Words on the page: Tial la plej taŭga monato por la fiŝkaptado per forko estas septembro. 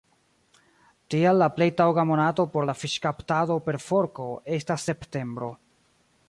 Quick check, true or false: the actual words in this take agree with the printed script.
true